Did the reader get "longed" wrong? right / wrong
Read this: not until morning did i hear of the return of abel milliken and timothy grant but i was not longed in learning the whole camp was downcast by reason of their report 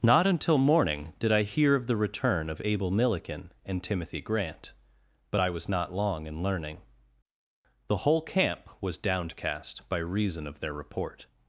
wrong